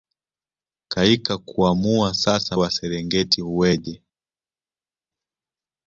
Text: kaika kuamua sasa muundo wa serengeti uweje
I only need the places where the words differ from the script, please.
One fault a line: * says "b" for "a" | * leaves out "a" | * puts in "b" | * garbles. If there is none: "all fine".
* leaves out "muundo"